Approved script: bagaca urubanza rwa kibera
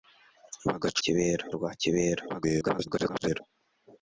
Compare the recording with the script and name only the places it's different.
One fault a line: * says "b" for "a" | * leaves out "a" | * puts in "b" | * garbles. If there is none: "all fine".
* says "kibera" for "urubanza"
* garbles